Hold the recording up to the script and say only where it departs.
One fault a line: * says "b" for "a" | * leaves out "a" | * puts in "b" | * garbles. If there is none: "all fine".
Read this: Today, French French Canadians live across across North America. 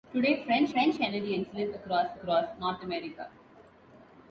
all fine